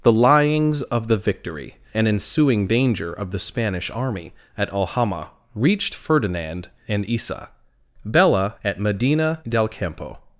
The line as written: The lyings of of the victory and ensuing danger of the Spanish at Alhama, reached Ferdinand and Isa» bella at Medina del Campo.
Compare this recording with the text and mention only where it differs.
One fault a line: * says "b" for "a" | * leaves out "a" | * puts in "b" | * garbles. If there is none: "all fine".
* leaves out "of"
* puts in "army"